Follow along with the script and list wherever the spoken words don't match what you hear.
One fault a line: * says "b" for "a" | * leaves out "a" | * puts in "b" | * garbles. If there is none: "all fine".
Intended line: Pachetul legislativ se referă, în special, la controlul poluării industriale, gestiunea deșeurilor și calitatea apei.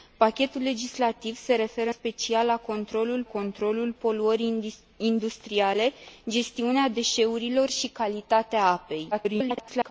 * leaves out "în"
* puts in "controlul"
* garbles